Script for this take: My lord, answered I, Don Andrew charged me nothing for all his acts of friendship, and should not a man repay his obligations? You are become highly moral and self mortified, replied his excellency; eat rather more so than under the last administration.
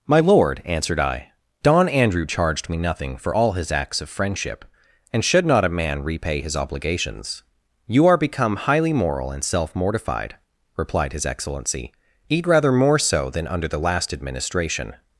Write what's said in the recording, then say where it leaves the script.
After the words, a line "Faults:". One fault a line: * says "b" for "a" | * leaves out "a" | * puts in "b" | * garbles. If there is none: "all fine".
My lord, answered I, Don Andrew charged me nothing for all his acts of friendship, and should not a man repay his obligations? You are become highly moral and self mortified, replied his excellency; eat rather more so than under the last administration.
Faults:
all fine